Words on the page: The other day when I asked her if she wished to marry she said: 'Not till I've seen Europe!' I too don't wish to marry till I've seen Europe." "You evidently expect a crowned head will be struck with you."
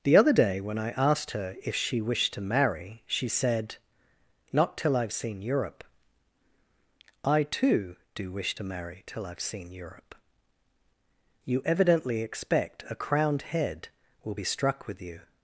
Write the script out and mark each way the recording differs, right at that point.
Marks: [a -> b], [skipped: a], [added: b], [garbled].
The other day when I asked her if she wished to marry she said: 'Not till I've seen Europe!' I too [don't -> do] wish to marry till I've seen Europe." "You evidently expect a crowned head will be struck with you."